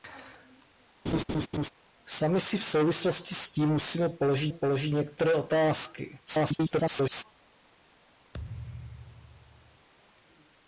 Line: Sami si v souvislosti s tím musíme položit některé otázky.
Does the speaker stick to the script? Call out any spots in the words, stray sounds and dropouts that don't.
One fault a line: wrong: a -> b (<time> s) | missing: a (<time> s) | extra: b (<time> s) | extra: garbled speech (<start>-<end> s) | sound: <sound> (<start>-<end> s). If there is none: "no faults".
sound: laugh (1.1-1.7 s)
extra: položit (4.5 s)
extra: garbled speech (6.3-7.2 s)
sound: thud (8.3-9.9 s)